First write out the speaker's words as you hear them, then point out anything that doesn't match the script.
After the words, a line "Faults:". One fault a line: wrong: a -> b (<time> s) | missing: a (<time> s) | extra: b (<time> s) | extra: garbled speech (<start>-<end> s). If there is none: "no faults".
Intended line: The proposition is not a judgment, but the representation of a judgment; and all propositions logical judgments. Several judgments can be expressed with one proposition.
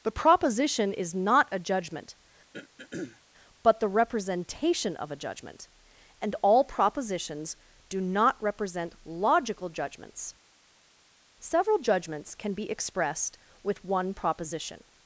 The proposition is not a judgment, but the representation of a judgment; and all propositions do not represent logical judgments. Several judgments can be expressed with one proposition.
Faults:
extra: do not represent (7.9 s)